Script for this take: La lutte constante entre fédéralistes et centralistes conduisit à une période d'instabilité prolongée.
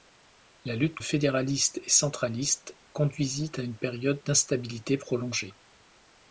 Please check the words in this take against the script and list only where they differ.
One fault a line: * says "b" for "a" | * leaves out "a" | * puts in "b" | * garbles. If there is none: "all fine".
* leaves out "constante entre"